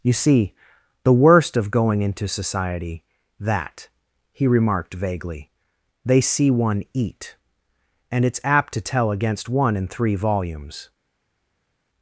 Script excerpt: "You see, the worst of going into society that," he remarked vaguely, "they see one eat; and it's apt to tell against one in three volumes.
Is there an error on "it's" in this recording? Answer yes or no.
no